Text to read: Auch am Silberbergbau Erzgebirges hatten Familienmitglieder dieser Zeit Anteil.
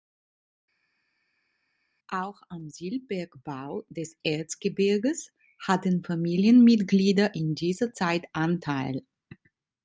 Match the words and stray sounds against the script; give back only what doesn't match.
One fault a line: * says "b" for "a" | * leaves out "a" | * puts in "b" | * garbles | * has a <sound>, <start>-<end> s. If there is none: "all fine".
* puts in "des"
* puts in "in"